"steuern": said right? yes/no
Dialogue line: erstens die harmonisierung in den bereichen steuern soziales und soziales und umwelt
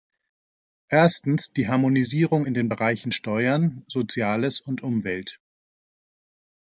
yes